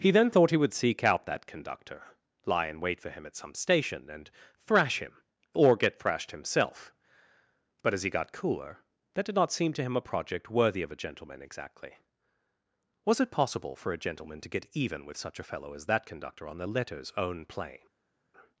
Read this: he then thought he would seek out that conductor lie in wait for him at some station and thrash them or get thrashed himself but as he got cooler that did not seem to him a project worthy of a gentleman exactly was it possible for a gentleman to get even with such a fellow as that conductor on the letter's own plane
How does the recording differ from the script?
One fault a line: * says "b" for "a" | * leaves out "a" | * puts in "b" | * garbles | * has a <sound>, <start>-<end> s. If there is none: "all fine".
* says "him" for "them"